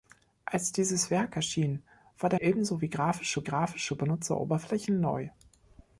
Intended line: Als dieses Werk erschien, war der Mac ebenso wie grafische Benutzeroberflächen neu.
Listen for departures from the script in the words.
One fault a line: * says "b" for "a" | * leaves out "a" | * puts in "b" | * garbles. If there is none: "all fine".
* leaves out "Mac"
* puts in "grafische"